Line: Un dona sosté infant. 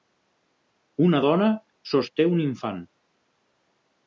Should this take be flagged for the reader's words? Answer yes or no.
yes